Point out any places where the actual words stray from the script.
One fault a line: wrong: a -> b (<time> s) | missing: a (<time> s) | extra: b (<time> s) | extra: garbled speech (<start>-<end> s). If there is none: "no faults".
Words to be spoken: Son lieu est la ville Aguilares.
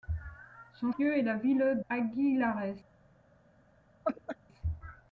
no faults